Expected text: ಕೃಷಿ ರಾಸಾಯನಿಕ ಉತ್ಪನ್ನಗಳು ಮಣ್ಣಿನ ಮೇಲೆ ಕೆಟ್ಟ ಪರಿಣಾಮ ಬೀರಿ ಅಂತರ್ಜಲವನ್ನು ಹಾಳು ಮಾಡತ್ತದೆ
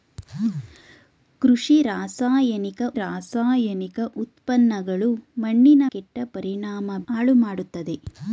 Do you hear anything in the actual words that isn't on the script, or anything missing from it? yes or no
yes